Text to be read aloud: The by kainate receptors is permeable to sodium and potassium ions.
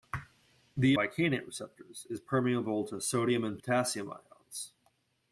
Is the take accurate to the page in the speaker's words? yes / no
yes